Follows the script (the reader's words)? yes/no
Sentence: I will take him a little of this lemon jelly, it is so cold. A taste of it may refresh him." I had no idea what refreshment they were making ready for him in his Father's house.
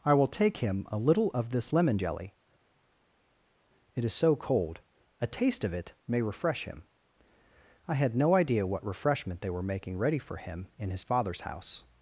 yes